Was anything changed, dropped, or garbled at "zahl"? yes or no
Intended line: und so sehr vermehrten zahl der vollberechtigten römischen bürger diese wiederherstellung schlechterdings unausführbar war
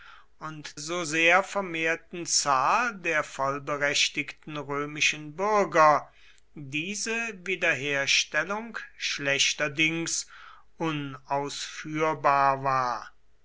no